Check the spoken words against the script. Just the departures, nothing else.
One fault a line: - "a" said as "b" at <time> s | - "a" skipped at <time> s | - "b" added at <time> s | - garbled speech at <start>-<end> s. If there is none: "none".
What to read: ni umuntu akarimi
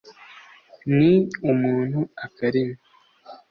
none